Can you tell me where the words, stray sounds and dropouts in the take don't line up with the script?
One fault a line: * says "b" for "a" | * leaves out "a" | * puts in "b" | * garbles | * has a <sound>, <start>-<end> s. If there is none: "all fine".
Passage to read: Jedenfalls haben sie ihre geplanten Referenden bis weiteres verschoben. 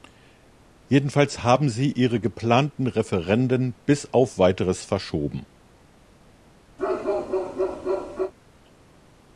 * puts in "auf"
* has a bark, 6.8-8.3 s